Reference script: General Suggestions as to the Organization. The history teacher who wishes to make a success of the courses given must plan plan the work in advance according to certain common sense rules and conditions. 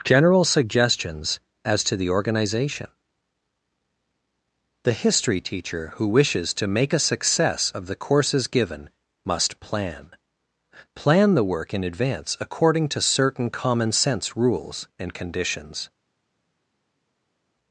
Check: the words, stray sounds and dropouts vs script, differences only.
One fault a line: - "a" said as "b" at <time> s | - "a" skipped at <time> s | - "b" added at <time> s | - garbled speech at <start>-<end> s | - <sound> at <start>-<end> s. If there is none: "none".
none